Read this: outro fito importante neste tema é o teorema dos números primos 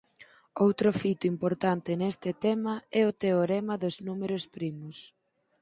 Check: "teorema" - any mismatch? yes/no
no